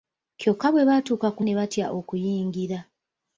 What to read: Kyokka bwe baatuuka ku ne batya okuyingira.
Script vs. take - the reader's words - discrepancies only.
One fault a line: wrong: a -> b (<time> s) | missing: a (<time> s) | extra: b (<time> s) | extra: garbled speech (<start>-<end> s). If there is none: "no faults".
no faults